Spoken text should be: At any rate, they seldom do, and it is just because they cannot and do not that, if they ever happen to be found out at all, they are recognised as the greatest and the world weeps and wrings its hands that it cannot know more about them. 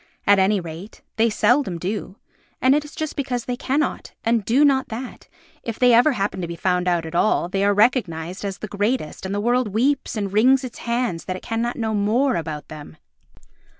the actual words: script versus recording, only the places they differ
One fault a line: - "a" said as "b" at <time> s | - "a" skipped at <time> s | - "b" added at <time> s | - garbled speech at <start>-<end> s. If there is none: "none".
none